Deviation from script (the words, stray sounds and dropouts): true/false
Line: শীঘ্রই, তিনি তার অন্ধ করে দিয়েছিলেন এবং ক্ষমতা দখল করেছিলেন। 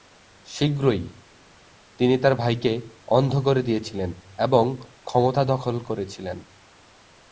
true